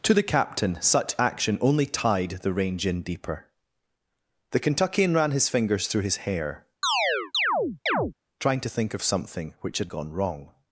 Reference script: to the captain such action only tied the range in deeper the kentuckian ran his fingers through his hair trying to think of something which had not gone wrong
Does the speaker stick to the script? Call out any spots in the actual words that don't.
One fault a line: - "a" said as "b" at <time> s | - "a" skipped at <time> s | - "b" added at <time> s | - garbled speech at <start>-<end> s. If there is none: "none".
- "not" skipped at 9.9 s